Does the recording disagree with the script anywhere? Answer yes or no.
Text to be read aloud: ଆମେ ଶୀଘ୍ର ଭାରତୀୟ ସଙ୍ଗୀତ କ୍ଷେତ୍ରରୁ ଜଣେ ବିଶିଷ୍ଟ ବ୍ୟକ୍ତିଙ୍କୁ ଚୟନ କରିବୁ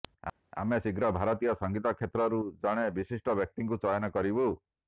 no